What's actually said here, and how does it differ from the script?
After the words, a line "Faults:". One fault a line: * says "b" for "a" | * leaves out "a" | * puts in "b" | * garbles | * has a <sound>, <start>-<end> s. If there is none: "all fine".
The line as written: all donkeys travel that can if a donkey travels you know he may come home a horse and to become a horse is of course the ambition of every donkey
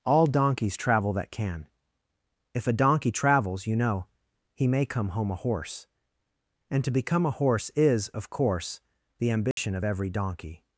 all donkeys travel that can if a donkey travels you know he may come home a horse and to become a horse is of course the ambition of every donkey
Faults:
* has a dropout, 9.5-9.6 s